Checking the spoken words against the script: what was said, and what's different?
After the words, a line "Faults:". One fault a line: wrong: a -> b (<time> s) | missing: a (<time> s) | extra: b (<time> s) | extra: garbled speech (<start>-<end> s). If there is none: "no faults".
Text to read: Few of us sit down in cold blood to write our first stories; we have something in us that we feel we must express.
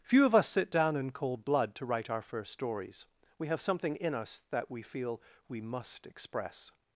Few of us sit down in cold blood to write our first stories; we have something in us that we feel we must express.
Faults:
no faults